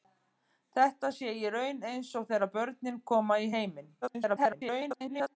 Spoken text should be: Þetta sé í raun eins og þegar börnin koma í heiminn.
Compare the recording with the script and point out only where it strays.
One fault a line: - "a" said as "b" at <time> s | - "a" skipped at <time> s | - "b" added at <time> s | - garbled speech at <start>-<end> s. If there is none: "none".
- garbled speech at 4.0-5.4 s